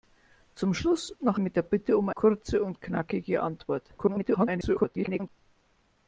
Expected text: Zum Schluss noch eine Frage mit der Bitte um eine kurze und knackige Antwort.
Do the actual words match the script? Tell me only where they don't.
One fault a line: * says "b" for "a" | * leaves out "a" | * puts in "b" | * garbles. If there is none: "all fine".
* leaves out "eine Frage"
* leaves out "eine"
* garbles